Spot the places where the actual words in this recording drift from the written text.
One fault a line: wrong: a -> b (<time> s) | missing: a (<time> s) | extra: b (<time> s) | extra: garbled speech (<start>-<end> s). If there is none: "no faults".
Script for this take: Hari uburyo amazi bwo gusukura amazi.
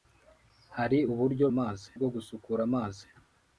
no faults